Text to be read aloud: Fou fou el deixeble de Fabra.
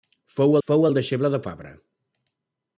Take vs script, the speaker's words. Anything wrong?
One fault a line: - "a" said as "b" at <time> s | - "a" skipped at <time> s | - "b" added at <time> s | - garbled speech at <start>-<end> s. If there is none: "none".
none